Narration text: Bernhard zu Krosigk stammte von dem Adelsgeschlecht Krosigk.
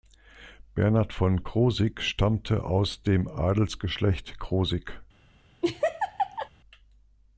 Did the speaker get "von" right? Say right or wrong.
wrong